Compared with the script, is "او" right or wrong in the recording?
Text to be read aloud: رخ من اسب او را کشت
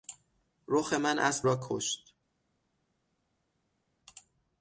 wrong